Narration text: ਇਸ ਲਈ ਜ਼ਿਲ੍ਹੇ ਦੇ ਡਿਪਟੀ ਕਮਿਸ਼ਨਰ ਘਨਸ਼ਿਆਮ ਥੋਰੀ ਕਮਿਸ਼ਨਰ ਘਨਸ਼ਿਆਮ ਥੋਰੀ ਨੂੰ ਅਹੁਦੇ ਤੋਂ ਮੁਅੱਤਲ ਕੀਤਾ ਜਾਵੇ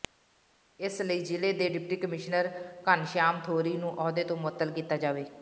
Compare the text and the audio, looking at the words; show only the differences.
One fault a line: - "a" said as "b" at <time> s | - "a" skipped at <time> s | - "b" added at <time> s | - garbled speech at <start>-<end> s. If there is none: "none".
- "ਕਮਿਸ਼ਨਰ ਘਨਸ਼ਿਆਮ ਥੋਰੀ" skipped at 3.8 s